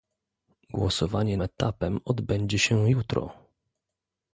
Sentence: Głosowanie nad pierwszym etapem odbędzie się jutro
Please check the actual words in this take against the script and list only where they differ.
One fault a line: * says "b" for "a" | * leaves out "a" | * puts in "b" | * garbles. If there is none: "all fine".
* leaves out "nad pierwszym"